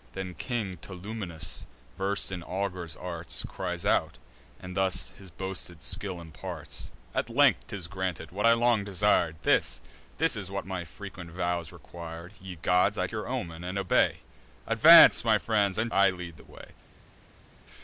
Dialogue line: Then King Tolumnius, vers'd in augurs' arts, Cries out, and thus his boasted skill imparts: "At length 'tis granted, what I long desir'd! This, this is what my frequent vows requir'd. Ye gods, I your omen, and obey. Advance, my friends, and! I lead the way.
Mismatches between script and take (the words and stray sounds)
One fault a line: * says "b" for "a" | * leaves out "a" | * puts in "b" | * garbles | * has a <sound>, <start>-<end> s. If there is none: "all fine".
all fine